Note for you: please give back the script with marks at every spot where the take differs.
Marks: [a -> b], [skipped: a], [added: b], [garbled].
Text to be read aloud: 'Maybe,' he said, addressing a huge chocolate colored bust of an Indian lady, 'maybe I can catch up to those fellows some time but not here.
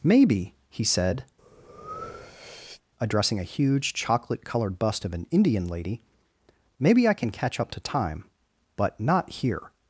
'Maybe,' he said, addressing a huge chocolate colored bust of an Indian lady, 'maybe I can catch up to [skipped: those fellows some] time but not here.